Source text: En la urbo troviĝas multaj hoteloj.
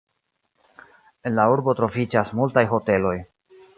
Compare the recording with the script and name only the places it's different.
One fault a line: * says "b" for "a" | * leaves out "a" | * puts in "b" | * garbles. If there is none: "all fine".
all fine